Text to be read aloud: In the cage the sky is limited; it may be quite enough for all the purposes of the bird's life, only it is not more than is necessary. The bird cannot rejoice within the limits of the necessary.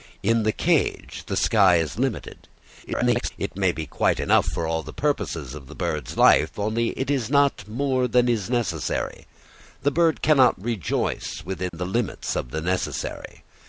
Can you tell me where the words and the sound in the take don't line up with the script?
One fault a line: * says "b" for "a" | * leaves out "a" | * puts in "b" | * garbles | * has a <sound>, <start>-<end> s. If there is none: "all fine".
* garbles
* has a dropout, 11.7-11.7 s